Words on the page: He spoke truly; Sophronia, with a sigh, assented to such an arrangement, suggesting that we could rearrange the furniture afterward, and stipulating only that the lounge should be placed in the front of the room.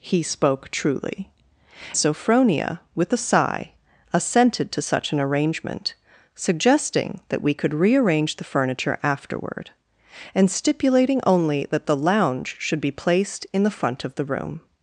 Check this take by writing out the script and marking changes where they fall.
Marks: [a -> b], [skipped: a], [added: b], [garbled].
He spoke truly; Sophronia, with a sigh, assented to such an arrangement, suggesting that we could rearrange the furniture afterward, and stipulating only that the lounge should be placed in the front of the room.